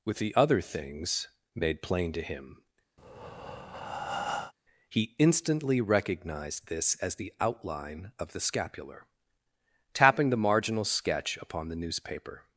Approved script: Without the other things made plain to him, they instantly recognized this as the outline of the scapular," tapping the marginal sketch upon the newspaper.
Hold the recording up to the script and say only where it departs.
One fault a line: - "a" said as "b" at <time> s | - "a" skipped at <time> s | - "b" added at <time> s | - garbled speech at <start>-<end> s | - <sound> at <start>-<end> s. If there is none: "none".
- "Without" said as "With" at 0.0 s
- breath at 3.0-4.5 s
- "they" said as "he" at 4.9 s